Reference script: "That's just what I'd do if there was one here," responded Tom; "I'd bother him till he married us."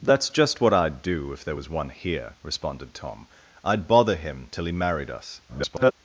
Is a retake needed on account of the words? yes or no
yes